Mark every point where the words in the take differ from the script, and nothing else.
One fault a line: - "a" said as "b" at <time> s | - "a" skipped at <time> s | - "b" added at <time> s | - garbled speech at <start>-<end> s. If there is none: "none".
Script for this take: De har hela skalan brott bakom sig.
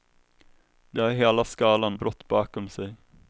none